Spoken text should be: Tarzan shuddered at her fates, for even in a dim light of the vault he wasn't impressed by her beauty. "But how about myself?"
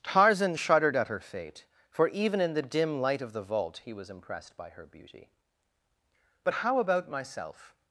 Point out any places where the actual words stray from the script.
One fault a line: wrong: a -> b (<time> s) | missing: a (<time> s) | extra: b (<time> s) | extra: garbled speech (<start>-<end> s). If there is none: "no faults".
wrong: fates -> fate (1.2 s)
wrong: a -> the (2.5 s)
wrong: wasn't -> was (3.9 s)